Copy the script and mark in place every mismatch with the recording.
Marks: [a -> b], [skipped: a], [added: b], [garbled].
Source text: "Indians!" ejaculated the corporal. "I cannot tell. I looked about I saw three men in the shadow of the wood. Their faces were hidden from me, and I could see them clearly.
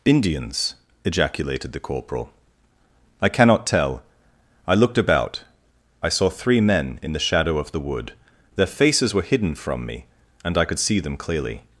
"Indians!" ejaculated the corporal. "I cannot tell. I looked about I saw three men in the shadow of the wood. Their faces were hidden from me, and I could see them clearly.